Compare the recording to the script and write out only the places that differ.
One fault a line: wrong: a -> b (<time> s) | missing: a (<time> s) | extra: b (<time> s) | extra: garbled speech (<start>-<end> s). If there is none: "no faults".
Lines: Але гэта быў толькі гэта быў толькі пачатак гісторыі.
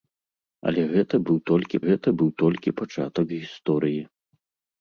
no faults